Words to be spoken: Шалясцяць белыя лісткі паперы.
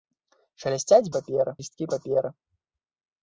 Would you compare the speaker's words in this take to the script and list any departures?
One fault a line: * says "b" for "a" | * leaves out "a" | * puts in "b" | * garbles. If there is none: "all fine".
* says "паперы" for "белыя"